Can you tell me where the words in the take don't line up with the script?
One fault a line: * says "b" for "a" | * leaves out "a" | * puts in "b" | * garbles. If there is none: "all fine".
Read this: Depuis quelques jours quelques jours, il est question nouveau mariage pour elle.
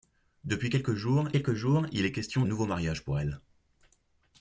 all fine